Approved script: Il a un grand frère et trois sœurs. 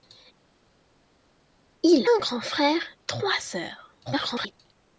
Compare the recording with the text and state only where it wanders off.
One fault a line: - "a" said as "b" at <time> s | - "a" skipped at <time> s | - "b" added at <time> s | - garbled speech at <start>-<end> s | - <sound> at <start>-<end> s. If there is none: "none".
- "a" skipped at 2.0 s
- "et" skipped at 2.8 s
- garbled speech at 4.1-4.5 s